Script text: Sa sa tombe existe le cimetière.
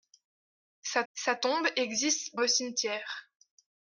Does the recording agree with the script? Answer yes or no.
yes